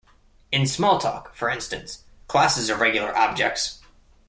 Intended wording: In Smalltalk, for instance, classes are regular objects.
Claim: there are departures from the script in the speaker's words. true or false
false